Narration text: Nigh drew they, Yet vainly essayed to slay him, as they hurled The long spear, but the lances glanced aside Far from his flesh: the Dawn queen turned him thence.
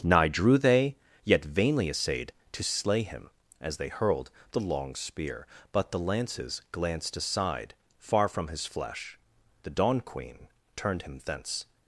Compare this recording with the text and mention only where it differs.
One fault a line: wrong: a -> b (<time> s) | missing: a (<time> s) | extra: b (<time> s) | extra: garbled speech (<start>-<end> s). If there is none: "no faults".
no faults